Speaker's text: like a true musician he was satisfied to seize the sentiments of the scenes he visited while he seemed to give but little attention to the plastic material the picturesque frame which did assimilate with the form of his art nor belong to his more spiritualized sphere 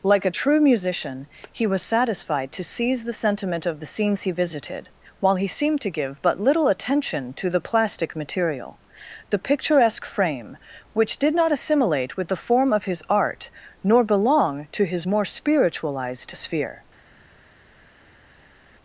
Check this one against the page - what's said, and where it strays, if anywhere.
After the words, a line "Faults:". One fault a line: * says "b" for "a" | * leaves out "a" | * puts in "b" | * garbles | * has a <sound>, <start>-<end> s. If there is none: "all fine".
like a true musician he was satisfied to seize the sentiment of the scenes he visited while he seemed to give but little attention to the plastic material the picturesque frame which did not assimilate with the form of his art nor belong to his more spiritualized sphere
Faults:
* says "sentiment" for "sentiments"
* puts in "not"